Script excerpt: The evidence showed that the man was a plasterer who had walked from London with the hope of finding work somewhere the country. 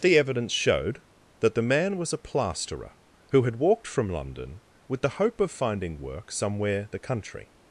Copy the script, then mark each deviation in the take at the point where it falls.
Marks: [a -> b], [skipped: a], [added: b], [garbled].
The evidence showed that the man was a plasterer who had walked from London with the hope of finding work somewhere the country.